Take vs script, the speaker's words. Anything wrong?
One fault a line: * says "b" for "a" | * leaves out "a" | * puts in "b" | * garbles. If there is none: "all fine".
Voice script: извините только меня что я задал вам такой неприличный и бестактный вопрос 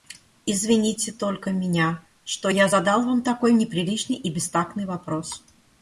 all fine